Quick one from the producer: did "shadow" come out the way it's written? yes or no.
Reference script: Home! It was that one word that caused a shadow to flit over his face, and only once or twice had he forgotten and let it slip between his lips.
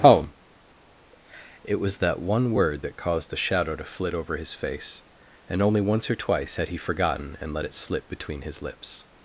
yes